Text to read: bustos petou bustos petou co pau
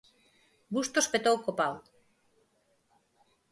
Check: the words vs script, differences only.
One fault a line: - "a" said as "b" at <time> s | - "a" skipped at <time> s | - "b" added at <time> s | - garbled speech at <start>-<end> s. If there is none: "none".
- "bustos petou" skipped at 1.4 s